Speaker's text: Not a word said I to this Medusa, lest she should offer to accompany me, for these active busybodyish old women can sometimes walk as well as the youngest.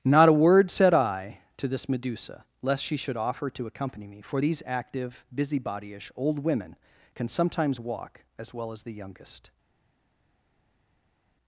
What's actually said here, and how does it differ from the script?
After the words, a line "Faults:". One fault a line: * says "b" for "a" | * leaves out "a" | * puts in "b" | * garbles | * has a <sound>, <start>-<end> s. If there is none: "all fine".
Not a word said I to this Medusa, lest she should offer to accompany me, for these active busybodyish old women can sometimes walk as well as the youngest.
Faults:
all fine